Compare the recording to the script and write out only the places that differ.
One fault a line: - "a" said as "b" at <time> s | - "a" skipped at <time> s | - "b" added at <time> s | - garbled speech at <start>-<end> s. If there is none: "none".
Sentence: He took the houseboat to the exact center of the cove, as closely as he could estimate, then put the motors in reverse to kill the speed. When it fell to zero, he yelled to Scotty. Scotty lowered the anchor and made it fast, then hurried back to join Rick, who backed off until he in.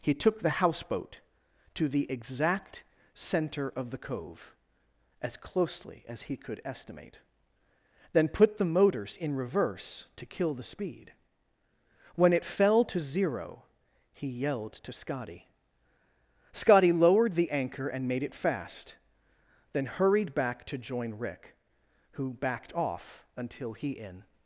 none